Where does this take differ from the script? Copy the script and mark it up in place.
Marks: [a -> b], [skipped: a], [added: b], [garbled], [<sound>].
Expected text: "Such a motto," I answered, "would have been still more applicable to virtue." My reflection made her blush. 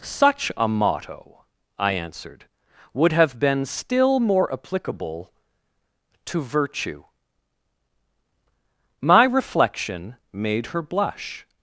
"Such a motto," I answered, "would have been still more applicable to virtue." My reflection made her blush.